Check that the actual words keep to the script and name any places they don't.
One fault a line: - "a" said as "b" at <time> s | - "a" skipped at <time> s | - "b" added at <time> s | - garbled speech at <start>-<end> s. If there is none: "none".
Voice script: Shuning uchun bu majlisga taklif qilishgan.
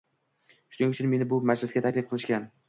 - "meni" added at 1.2 s